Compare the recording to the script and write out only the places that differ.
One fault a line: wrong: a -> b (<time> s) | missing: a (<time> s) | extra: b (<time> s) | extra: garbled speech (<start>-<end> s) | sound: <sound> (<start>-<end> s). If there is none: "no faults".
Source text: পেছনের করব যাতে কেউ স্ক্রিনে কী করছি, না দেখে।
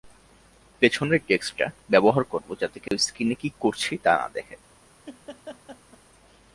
extra: ডেস্কটা ব্যবহার (1.3 s)
sound: dropout (2.9-2.9 s)
extra: তা (4.0 s)
sound: laugh (5.1-6.0 s)